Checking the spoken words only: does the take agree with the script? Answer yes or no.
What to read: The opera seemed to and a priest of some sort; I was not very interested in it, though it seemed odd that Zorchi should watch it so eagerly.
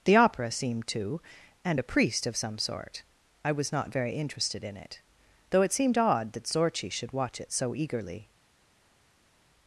yes